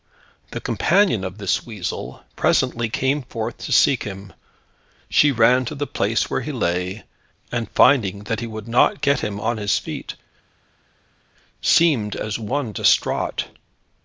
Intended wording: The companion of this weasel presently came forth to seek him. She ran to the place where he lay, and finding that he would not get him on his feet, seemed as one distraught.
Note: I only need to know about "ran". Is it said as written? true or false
true